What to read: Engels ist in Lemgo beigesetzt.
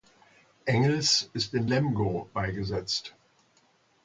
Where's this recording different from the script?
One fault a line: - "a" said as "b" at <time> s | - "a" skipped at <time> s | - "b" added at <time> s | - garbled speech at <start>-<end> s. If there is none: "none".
none